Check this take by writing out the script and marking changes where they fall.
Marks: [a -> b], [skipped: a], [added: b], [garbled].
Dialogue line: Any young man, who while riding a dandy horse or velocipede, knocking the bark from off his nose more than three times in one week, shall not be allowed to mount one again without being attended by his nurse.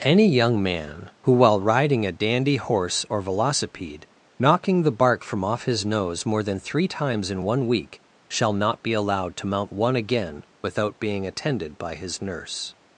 Any young man, who while riding a dandy horse or velocipede, knocking the bark from off his nose more than three times in one week, shall not be allowed to mount one again without being attended by his nurse.